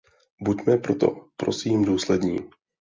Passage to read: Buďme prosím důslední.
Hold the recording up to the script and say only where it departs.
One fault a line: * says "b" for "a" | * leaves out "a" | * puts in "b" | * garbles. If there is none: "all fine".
* puts in "proto"